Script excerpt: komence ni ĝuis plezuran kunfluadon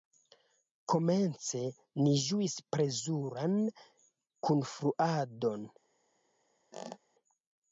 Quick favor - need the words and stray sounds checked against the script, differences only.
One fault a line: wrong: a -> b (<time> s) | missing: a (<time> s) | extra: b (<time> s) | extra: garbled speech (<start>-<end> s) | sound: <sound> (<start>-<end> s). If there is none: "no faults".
sound: squeak (6.7-7.0 s)